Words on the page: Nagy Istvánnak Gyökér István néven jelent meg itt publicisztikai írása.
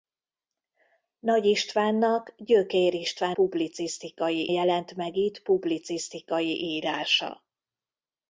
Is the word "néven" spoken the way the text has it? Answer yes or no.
no